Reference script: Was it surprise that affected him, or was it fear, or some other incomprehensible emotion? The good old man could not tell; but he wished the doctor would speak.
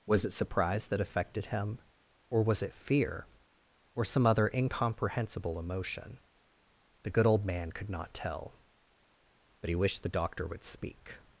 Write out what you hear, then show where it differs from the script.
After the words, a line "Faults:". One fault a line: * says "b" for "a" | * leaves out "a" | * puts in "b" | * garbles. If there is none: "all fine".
Was it surprise that affected him, or was it fear, or some other incomprehensible emotion? The good old man could not tell; but he wished the doctor would speak.
Faults:
all fine